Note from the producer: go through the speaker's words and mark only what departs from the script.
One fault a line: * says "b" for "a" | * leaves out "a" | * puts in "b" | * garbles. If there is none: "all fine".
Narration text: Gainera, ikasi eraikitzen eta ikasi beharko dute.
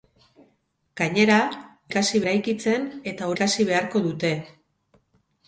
all fine